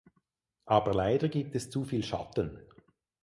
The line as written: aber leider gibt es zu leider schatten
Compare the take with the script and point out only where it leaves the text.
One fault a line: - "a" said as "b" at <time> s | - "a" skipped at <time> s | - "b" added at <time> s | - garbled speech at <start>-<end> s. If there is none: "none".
- "leider" said as "viel" at 1.8 s